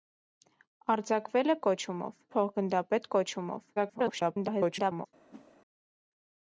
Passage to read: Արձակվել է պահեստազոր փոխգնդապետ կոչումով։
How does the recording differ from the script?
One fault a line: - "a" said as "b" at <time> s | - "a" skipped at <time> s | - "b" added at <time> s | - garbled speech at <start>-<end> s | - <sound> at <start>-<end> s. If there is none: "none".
- "պահեստազոր" said as "կոչումով" at 1.7 s
- garbled speech at 3.8-5.1 s
- whoosh at 5.3-5.6 s